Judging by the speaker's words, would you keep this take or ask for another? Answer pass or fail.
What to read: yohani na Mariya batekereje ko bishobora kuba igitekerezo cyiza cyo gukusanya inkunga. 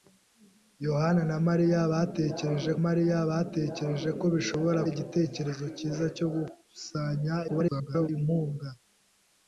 fail